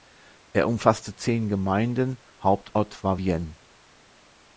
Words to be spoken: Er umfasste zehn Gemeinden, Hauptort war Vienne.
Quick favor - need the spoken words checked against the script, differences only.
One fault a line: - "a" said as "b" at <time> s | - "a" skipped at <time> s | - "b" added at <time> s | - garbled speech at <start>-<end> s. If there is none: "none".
none